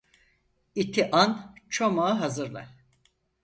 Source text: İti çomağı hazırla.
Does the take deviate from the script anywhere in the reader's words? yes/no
yes